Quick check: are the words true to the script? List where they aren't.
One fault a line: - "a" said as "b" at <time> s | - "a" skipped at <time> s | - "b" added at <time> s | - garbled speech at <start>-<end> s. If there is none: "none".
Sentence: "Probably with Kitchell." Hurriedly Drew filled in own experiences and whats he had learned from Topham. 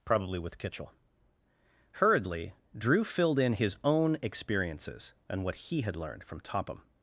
- "his" added at 3.5 s
- "whats" said as "what" at 5.4 s